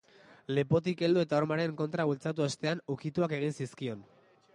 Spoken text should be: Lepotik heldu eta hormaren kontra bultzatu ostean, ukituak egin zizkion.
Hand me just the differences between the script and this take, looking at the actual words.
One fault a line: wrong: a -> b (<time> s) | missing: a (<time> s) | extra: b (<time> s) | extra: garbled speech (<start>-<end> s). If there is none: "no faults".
no faults